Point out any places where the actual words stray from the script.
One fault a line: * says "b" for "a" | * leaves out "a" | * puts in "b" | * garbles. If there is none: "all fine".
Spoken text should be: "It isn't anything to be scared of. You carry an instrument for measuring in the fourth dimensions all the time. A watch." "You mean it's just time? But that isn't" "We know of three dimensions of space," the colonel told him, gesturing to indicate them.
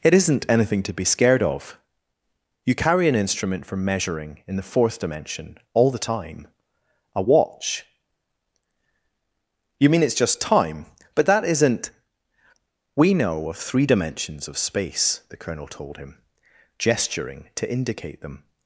* says "dimension" for "dimensions"